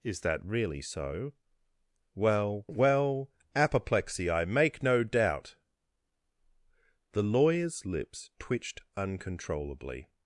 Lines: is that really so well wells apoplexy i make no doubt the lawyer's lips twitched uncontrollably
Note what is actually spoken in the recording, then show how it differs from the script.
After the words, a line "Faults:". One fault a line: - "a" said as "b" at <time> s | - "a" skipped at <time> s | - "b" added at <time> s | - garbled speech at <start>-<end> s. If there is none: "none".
is that really so well well apoplexy i make no doubt the lawyer's lips twitched uncontrollably
Faults:
- "wells" said as "well" at 2.7 s